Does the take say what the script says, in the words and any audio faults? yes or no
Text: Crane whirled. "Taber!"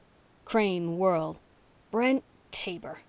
no